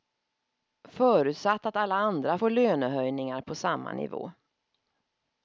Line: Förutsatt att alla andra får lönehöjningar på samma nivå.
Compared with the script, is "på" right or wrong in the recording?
right